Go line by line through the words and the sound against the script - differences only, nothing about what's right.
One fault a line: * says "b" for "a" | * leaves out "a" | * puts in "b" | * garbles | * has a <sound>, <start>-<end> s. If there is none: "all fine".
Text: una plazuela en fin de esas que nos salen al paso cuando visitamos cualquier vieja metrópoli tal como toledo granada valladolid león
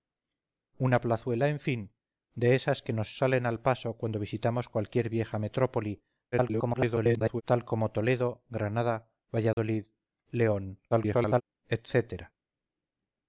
* garbles
* has a dropout, 9.5-9.6 s
* garbles